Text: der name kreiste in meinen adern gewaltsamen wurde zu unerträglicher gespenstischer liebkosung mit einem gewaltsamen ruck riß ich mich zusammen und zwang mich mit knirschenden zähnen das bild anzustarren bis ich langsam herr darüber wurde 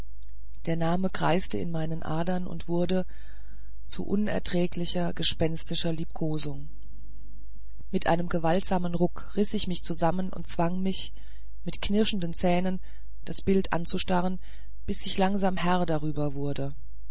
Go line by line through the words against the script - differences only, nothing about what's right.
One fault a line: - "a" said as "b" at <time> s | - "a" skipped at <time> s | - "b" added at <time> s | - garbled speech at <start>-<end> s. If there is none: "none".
- "gewaltsamen" said as "und" at 2.5 s